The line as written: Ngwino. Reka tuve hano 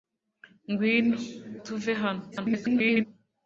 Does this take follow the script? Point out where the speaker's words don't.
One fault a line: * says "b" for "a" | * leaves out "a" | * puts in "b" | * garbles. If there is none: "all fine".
* leaves out "Reka"
* garbles